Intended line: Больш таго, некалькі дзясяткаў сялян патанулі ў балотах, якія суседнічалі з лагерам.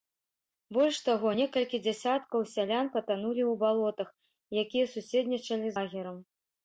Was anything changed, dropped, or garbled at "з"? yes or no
yes